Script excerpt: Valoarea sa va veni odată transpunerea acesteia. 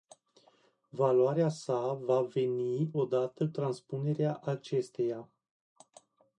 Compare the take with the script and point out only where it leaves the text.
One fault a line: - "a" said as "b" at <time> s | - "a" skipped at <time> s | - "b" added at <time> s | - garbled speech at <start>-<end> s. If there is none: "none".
none